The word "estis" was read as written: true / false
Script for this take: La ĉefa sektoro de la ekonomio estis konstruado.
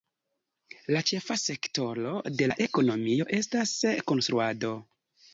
false